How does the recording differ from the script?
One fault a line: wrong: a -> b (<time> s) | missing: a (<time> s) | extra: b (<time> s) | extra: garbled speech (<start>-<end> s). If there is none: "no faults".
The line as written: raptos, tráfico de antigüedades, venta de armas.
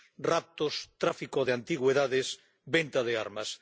no faults